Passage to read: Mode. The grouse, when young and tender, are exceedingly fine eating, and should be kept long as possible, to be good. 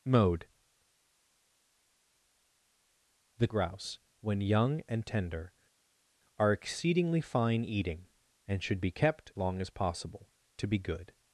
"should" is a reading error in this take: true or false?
false